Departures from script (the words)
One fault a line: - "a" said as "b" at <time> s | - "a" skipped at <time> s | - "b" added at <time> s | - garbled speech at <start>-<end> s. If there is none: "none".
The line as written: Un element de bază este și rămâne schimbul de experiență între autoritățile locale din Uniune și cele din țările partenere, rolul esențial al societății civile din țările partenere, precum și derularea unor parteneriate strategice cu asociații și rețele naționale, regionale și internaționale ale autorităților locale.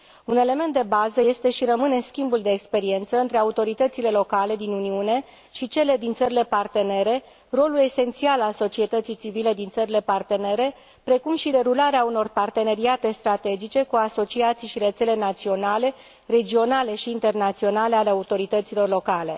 none